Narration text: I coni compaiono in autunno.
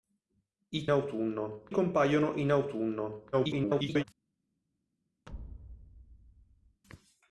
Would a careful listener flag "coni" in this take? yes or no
yes